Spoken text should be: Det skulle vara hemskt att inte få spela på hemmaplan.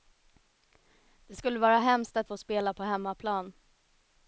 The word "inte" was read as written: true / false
false